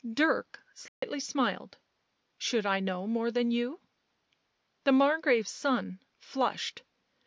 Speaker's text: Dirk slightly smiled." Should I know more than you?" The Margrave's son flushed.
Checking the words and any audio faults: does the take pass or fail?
fail